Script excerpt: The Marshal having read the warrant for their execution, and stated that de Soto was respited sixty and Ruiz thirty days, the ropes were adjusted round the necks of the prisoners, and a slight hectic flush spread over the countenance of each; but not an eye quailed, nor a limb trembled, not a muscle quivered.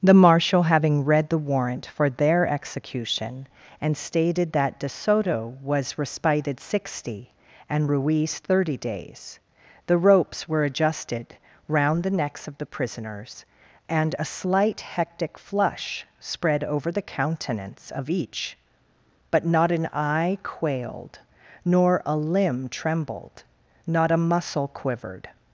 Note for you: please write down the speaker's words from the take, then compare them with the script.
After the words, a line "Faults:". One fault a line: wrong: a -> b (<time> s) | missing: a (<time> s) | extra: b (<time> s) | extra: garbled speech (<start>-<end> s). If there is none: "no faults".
The Marshal having read the warrant for their execution, and stated that de Soto was respited sixty and Ruiz thirty days, the ropes were adjusted round the necks of the prisoners, and a slight hectic flush spread over the countenance of each; but not an eye quailed, nor a limb trembled, not a muscle quivered.
Faults:
no faults